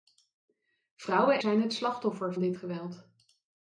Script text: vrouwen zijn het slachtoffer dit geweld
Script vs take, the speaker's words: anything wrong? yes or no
no